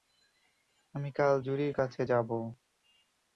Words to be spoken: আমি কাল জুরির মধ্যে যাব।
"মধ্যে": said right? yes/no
no